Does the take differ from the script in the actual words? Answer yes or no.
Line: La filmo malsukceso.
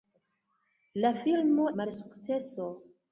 no